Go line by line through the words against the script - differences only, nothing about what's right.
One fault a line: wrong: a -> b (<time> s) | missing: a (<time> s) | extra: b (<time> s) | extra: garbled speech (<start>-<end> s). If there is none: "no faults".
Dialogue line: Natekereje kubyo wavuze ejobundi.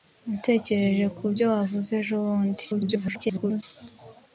extra: garbled speech (2.7-3.6 s)